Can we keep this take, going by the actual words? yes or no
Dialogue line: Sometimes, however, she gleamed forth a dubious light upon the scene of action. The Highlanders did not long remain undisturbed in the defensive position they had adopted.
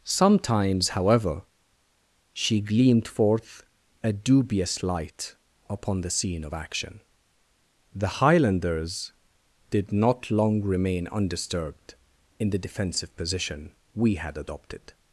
no